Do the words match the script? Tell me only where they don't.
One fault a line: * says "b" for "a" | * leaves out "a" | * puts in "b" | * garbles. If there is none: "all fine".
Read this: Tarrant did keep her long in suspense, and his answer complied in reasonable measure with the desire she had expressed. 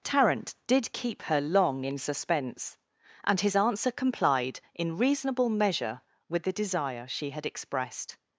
all fine